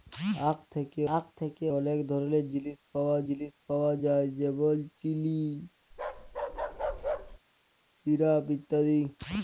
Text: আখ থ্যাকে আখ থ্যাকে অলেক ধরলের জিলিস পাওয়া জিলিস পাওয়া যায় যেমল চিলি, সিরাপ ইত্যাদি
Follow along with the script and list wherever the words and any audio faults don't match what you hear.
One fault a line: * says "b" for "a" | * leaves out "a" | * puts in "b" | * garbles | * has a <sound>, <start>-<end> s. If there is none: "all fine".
* has a bark, 5.9-7.4 s